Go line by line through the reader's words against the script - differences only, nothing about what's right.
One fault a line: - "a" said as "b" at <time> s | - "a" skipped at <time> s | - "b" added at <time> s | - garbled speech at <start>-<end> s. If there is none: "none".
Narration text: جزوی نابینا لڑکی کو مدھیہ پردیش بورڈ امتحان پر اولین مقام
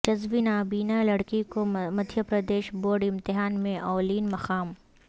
- "پر" said as "میں" at 3.6 s